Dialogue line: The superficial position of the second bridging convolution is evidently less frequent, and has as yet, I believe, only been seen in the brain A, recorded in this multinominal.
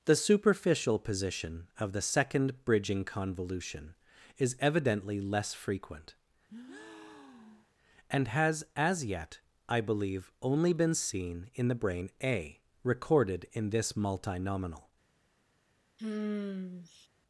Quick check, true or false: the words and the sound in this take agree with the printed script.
false